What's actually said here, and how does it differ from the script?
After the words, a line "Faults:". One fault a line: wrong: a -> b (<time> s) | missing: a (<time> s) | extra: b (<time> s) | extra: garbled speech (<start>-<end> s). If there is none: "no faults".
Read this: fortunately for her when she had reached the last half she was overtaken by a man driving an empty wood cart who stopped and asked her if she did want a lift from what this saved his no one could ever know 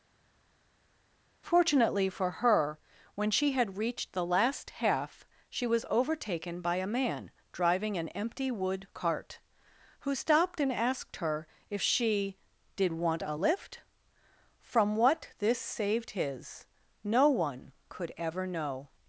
fortunately for her when she had reached the last half she was overtaken by a man driving an empty wood cart who stopped and asked her if she did want a lift from what this saved his no one could ever know
Faults:
no faults